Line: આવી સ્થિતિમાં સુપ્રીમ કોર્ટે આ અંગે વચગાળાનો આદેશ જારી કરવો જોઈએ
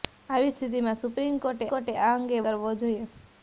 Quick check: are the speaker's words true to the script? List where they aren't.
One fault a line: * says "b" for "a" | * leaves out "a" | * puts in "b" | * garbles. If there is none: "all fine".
* puts in "કોર્ટે"
* leaves out "વચગાળાનો આદેશ જારી"